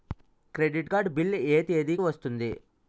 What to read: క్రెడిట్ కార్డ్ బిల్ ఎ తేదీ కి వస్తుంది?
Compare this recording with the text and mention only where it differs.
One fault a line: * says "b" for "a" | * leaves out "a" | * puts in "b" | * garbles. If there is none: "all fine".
all fine